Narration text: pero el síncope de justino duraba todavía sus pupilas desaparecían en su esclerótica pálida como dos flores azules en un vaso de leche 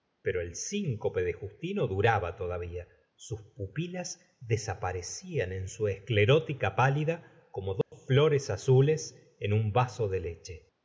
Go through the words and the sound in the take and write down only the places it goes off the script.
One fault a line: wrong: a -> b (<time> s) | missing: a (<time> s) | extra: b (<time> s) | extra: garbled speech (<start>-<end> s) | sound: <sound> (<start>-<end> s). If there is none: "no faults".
sound: dropout (7.8-7.9 s)